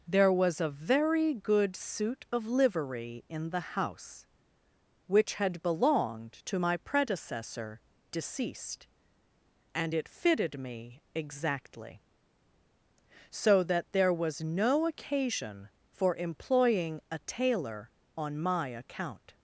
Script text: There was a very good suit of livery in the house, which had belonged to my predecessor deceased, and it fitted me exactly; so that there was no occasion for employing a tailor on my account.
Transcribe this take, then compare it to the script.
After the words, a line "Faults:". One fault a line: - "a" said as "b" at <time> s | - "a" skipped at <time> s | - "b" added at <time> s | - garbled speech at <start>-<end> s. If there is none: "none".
There was a very good suit of livery in the house, which had belonged to my predecessor deceased, and it fitted me exactly; so that there was no occasion for employing a tailor on my account.
Faults:
none